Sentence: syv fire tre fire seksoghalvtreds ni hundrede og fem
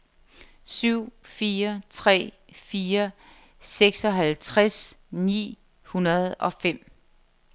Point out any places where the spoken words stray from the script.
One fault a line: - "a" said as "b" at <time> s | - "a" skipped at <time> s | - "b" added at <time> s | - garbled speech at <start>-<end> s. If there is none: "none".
none